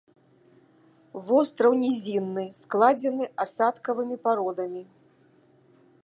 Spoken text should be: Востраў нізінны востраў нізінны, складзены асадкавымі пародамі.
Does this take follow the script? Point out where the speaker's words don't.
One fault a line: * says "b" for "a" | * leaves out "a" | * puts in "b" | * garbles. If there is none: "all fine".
* leaves out "востраў нізінны"